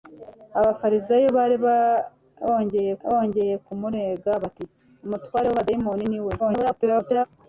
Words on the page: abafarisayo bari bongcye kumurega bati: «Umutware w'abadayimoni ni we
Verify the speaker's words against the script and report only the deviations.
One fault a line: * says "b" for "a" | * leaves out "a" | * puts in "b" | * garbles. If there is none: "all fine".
* puts in "bongcye"
* garbles